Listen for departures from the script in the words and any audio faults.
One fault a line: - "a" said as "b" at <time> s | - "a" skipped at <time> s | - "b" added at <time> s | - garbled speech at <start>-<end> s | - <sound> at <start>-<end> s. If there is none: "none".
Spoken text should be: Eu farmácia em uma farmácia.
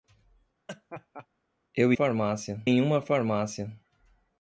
- laugh at 0.7-1.3 s